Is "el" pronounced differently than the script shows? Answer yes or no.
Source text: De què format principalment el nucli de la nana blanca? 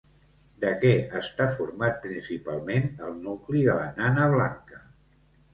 no